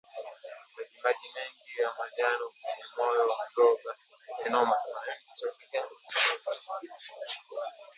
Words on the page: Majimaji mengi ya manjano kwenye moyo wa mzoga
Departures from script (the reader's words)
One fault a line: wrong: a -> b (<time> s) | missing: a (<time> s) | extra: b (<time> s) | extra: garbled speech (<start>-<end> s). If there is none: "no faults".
no faults